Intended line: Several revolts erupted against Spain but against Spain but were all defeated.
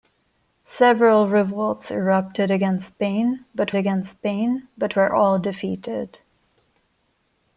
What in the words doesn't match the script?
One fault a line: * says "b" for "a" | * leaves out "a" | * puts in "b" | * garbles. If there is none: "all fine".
all fine